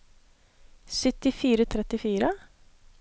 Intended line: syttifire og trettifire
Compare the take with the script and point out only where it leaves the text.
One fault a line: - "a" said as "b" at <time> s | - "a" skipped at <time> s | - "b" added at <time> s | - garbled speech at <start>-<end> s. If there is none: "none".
none